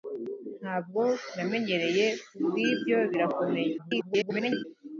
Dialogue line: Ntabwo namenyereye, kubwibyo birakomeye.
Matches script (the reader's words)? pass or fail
fail